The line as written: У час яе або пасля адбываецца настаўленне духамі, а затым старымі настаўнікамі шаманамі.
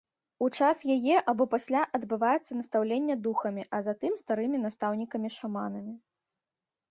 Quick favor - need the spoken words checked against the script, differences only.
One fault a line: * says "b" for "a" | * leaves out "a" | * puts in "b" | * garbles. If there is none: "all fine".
all fine